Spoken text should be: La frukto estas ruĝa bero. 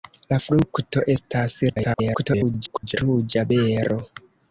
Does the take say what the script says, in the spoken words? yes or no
no